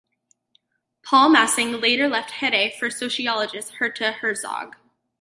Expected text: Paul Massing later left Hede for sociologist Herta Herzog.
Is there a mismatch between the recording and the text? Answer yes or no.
no